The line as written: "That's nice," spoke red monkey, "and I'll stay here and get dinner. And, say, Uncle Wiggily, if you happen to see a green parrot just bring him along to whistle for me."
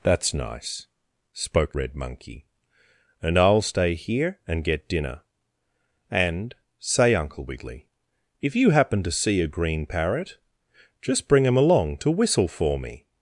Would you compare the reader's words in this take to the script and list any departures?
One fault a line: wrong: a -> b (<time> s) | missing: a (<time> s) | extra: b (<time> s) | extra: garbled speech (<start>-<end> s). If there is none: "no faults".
no faults